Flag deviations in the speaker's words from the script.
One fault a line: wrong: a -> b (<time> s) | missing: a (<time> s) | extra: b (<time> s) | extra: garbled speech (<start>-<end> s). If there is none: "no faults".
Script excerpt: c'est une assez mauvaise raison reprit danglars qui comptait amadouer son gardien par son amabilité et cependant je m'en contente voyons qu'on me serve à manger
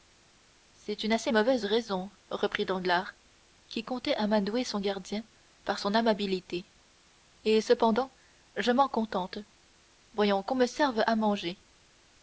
no faults